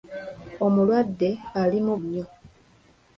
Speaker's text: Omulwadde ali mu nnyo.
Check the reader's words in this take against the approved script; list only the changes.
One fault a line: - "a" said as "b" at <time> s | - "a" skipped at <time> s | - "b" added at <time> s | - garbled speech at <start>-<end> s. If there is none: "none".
none